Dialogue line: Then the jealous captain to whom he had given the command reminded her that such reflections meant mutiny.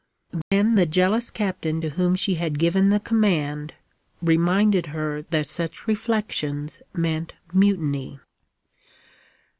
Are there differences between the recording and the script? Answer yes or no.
yes